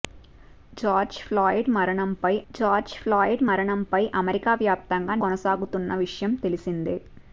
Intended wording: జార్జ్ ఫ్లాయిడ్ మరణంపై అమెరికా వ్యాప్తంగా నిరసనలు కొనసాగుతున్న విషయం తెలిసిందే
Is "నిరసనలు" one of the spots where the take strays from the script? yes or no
yes